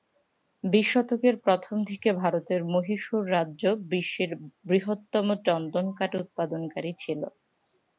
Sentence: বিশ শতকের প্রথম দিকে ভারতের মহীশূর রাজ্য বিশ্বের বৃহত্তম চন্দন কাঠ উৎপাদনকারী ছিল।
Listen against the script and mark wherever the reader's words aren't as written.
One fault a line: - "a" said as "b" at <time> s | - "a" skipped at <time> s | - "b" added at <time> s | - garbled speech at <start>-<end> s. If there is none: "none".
none